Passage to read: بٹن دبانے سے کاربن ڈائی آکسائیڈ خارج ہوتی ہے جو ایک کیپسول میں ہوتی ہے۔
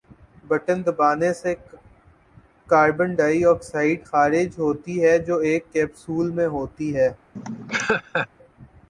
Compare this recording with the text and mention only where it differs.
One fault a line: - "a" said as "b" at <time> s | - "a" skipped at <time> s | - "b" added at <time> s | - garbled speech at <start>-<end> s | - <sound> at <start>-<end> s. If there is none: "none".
- laugh at 7.4-8.3 s